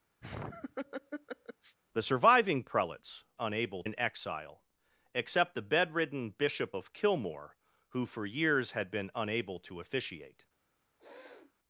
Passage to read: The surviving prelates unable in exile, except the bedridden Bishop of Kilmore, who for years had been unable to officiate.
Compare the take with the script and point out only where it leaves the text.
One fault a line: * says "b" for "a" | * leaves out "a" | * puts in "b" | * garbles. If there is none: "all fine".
all fine